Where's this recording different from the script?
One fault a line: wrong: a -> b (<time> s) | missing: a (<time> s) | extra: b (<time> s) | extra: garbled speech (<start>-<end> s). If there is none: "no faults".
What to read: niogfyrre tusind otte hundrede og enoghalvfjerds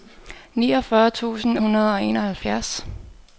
missing: otte (1.6 s)